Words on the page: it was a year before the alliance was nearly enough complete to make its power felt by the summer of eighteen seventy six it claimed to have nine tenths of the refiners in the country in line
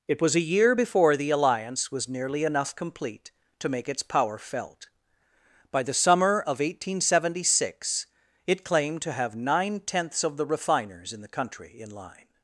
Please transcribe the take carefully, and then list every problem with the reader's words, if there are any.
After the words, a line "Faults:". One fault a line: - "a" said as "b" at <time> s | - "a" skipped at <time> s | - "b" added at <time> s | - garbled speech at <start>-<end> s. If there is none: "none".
it was a year before the alliance was nearly enough complete to make its power felt by the summer of eighteen seventy six it claimed to have nine tenths of the refiners in the country in line
Faults:
none